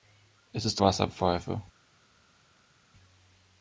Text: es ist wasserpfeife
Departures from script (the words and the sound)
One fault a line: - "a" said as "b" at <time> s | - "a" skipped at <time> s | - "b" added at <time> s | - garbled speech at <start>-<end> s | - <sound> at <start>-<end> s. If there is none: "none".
none